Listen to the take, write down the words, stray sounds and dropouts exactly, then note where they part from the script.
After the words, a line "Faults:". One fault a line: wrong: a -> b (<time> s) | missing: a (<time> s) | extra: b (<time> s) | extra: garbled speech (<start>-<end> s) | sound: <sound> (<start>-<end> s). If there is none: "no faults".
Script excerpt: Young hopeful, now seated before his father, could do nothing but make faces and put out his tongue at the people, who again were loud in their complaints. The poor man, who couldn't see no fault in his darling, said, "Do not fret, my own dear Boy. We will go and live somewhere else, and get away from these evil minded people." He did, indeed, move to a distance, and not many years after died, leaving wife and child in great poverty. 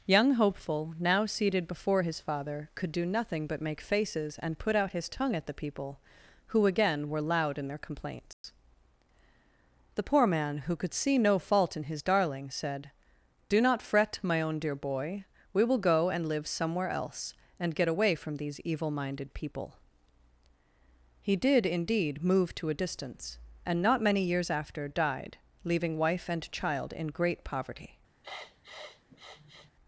Young hopeful, now seated before his father, could do nothing but make faces and put out his tongue at the people, who again were loud in their complaints. The poor man, who could see no fault in his darling, said, "Do not fret, my own dear Boy. We will go and live somewhere else, and get away from these evil minded people." He did, indeed, move to a distance, and not many years after died, leaving wife and child in great poverty.
Faults:
sound: dropout (8.3-8.4 s)
wrong: couldn't -> could (10.8 s)
sound: sniff (28.2-29.7 s)